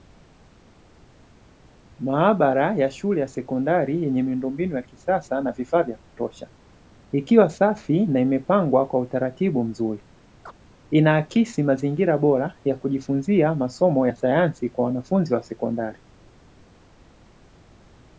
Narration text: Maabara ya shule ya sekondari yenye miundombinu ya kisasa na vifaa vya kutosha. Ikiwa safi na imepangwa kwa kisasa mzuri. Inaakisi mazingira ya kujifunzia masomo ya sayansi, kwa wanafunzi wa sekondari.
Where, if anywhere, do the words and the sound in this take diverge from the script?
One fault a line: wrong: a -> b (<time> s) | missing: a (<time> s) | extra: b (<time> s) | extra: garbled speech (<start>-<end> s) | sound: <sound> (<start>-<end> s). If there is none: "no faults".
wrong: kisasa -> utaratibu (9.0 s)
sound: chirp (10.5-10.5 s)
extra: bora (12.2 s)